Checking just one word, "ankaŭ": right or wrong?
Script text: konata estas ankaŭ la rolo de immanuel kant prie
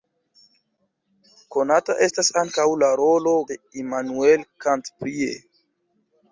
right